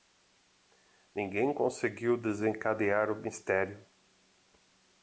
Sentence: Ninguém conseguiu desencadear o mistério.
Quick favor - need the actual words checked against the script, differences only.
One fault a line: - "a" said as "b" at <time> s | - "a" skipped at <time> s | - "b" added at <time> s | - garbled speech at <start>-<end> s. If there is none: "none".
none